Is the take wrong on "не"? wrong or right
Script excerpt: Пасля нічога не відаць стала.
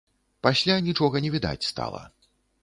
right